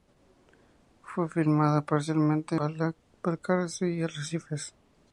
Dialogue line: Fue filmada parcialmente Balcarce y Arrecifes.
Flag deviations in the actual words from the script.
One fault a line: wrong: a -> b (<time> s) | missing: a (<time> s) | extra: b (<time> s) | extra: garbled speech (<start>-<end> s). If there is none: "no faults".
no faults